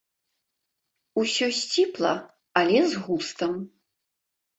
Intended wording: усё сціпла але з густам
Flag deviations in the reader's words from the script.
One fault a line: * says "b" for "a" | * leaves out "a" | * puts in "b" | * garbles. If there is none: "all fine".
all fine